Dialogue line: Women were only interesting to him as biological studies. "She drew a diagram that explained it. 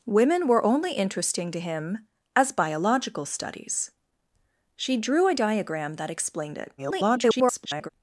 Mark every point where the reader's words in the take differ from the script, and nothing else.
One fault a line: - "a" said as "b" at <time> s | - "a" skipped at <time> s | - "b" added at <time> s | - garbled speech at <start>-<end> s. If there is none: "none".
- garbled speech at 6.8-7.9 s